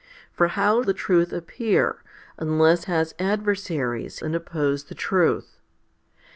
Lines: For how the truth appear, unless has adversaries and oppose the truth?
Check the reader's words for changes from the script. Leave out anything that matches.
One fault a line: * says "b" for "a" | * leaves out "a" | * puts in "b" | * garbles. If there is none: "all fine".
all fine